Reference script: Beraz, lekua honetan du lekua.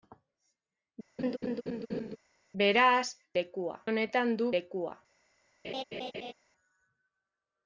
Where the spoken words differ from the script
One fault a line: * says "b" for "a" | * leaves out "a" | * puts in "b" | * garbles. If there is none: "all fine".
all fine